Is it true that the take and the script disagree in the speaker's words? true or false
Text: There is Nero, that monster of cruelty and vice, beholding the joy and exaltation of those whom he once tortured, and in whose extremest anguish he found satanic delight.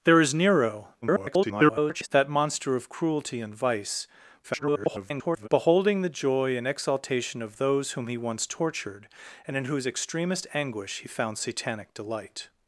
true